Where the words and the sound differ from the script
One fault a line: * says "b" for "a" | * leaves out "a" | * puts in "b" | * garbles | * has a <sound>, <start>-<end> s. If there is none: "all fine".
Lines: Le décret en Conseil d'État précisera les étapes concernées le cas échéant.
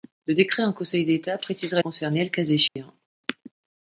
* leaves out "les étapes"
* has a dropout, 2.7-2.8 s